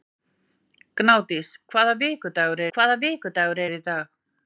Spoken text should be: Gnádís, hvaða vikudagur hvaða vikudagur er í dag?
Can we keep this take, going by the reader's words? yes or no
yes